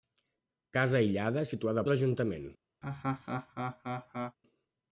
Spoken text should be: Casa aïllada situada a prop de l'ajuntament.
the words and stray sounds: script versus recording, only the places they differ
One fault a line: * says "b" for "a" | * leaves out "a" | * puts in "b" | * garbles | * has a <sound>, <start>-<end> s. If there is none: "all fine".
* leaves out "prop"
* has a laugh, 2.8-4.4 s